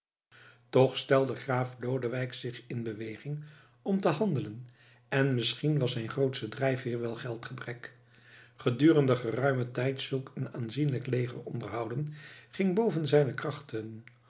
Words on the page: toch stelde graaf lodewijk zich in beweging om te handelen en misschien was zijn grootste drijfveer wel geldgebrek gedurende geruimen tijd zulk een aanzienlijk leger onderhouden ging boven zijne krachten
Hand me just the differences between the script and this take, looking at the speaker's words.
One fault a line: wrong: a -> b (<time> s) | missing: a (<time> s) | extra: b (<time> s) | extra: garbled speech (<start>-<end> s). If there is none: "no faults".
no faults